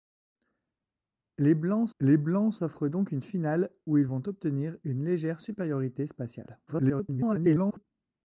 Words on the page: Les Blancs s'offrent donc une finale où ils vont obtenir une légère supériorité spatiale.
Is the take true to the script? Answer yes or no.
no